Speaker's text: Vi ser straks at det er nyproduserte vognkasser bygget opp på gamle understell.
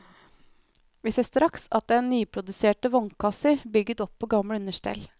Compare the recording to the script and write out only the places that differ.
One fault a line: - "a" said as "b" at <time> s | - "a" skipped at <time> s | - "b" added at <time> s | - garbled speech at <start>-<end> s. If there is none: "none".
none